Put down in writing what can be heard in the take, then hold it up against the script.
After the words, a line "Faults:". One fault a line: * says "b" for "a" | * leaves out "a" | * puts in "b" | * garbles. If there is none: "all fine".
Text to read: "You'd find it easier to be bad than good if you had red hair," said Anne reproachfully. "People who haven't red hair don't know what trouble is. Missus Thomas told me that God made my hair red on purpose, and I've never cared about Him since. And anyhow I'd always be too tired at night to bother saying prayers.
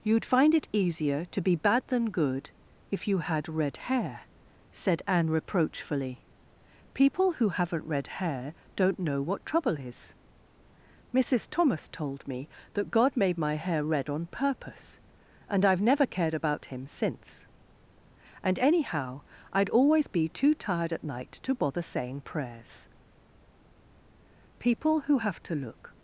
"You'd find it easier to be bad than good if you had red hair," said Anne reproachfully. "People who haven't red hair don't know what trouble is. Missus Thomas told me that God made my hair red on purpose, and I've never cared about Him since. And anyhow I'd always be too tired at night to bother saying prayers. People who have to look
Faults:
* puts in "People who have to look"